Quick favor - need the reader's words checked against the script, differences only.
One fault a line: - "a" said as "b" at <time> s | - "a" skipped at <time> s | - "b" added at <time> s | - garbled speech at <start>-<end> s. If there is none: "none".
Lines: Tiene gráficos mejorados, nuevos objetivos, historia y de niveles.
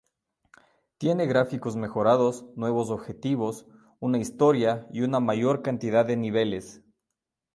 - "una" added at 4.0 s
- "una mayor cantidad" added at 5.0 s